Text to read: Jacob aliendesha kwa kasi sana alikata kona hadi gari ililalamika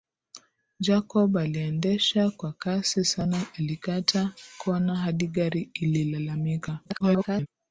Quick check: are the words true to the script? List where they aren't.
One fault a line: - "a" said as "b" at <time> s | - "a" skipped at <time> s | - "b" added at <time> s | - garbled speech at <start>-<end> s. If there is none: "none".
- garbled speech at 6.8-7.5 s